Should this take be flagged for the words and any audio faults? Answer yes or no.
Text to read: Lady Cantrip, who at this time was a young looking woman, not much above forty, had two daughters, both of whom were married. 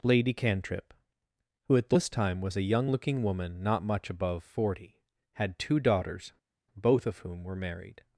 no